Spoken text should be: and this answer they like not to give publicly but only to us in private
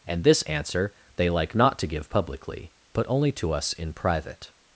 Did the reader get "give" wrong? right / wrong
right